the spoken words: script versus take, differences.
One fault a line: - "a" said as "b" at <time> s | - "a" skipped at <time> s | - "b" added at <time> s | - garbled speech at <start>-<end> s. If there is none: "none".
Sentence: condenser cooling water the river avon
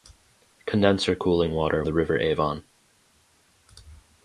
none